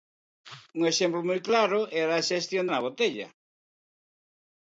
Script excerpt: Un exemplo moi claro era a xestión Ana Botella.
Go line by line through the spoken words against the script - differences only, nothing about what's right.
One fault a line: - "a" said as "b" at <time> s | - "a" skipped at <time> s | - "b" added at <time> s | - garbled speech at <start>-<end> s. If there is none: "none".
none